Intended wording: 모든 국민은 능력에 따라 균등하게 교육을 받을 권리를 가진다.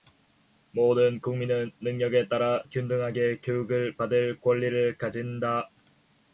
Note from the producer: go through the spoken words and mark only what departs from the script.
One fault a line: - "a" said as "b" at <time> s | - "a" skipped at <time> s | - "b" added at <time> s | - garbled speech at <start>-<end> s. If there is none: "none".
none